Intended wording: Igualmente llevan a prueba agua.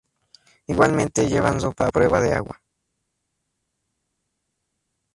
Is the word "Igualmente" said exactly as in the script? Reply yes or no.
yes